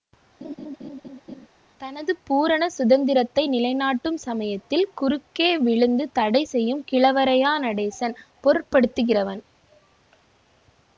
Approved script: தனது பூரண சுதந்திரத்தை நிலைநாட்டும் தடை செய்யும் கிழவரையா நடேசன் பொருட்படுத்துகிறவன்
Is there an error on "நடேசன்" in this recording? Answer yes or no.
no